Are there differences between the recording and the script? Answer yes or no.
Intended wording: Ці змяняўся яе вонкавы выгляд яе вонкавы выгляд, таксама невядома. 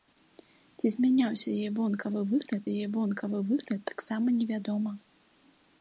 no